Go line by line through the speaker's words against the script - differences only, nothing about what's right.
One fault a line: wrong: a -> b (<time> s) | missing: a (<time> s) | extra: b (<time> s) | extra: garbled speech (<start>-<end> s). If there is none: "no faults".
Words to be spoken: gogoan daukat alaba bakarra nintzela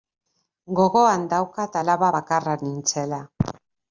no faults